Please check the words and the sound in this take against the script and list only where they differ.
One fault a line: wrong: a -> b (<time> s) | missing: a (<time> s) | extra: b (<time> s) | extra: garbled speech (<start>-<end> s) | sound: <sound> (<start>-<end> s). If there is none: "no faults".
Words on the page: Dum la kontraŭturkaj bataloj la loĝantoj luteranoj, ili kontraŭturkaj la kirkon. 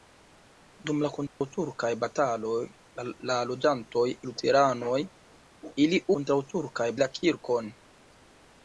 sound: dropout (1.3-1.4 s)